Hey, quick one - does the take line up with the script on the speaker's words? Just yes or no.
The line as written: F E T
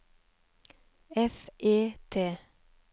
yes